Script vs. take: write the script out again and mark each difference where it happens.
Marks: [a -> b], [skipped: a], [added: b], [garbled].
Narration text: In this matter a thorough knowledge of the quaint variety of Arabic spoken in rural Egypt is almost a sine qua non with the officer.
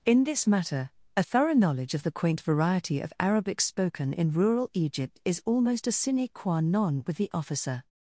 In this matter a thorough knowledge of the quaint variety of Arabic spoken in rural Egypt is almost a sine qua non with the officer.